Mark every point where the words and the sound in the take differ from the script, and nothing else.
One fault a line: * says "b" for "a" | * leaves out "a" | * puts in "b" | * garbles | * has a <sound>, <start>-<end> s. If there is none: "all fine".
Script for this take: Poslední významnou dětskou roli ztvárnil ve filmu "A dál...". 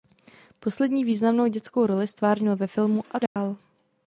* has a dropout, 3.3-3.4 s